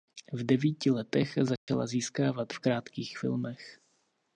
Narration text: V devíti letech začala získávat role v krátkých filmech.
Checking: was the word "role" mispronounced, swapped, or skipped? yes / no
yes